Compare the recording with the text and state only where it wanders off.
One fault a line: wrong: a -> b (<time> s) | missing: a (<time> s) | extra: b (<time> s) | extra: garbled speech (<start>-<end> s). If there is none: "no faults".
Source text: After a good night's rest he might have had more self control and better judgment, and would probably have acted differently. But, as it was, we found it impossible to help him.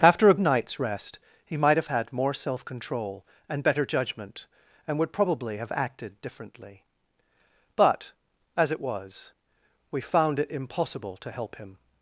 missing: good (0.3 s)